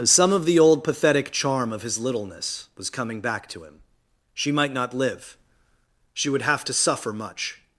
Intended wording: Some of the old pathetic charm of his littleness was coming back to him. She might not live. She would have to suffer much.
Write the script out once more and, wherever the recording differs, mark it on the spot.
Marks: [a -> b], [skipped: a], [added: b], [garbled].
Some of the old pathetic charm of his littleness was coming back to him. She might not live. She would have to suffer much.